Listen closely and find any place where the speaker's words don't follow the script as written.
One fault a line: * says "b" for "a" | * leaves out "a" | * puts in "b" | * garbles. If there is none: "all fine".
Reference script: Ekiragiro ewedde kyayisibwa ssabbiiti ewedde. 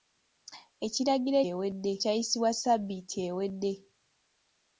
all fine